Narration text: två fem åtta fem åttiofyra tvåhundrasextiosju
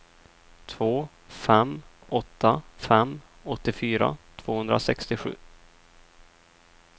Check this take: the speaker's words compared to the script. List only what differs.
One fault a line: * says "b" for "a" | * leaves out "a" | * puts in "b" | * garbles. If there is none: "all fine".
all fine